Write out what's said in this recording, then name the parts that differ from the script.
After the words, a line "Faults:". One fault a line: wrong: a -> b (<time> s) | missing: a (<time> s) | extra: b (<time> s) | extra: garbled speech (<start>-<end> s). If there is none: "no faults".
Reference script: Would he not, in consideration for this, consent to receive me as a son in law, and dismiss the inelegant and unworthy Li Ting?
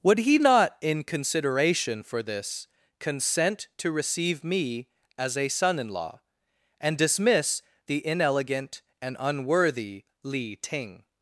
Would he not, in consideration for this, consent to receive me as a son in law, and dismiss the inelegant and unworthy Li Ting?
Faults:
no faults